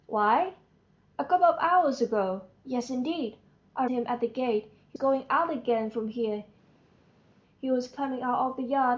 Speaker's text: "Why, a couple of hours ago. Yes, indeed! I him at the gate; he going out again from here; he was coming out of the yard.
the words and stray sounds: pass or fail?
pass